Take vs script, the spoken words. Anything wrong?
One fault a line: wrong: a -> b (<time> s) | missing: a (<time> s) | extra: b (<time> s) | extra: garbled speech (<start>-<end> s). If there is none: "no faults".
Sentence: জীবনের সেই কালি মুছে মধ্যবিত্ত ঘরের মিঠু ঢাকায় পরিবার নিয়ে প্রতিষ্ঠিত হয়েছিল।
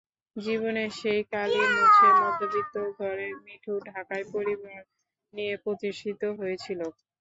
no faults